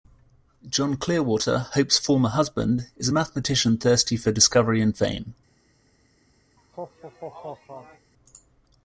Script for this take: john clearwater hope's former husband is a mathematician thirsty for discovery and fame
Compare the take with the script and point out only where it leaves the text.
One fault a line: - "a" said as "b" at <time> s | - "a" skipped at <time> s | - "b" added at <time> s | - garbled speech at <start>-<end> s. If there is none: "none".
none